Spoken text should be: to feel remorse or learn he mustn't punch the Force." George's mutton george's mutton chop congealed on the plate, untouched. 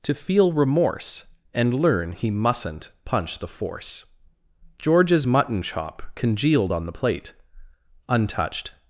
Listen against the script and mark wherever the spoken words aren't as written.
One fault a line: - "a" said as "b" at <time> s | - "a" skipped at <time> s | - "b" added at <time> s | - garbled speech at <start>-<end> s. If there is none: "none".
- "or" said as "and" at 1.5 s
- "george's mutton" skipped at 5.6 s